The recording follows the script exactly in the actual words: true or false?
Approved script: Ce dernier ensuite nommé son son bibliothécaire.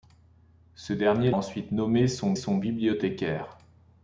true